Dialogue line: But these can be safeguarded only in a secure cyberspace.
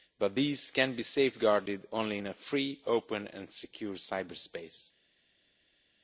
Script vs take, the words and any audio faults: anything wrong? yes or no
yes